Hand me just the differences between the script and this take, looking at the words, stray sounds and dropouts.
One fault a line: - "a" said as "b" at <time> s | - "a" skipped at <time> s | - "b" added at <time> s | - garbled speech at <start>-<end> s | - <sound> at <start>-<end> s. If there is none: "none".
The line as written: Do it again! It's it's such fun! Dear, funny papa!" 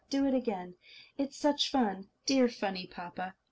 - "it's" skipped at 1.4 s